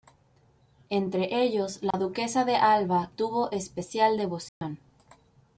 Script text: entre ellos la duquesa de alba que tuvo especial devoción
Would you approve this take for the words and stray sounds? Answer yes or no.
no